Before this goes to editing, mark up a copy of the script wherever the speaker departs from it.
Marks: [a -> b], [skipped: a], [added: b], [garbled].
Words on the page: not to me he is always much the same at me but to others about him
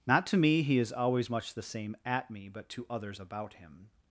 not to me he is always much the same at me but to others about him